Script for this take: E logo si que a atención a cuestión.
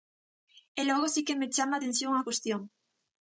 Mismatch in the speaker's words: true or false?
true